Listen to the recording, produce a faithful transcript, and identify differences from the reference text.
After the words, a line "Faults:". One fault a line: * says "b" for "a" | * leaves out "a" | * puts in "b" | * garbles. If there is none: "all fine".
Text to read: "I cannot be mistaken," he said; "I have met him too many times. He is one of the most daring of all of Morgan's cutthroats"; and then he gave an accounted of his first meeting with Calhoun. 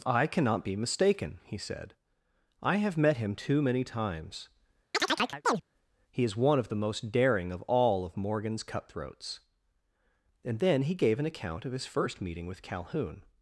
"I cannot be mistaken," he said; "I have met him too many times. He is one of the most daring of all of Morgan's cutthroats"; and then he gave an account of his first meeting with Calhoun.
Faults:
* says "account" for "accounted"